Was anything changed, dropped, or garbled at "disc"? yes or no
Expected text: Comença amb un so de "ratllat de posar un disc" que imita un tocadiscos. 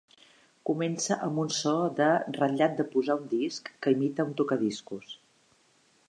no